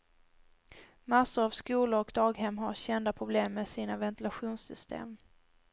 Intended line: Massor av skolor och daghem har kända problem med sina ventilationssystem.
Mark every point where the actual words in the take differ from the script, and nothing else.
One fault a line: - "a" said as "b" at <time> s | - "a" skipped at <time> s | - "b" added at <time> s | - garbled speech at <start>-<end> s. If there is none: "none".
none